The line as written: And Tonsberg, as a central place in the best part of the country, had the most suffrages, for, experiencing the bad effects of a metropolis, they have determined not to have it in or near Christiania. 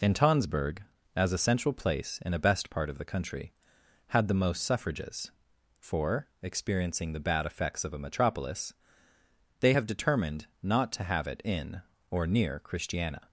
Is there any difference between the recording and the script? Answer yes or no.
yes